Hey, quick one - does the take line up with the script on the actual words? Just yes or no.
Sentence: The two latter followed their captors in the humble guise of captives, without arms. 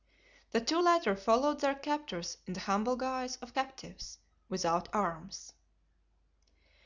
yes